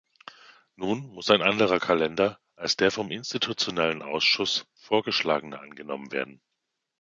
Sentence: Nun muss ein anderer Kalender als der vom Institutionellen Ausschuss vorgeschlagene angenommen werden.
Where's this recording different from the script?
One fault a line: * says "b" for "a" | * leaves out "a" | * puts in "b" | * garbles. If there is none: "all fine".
all fine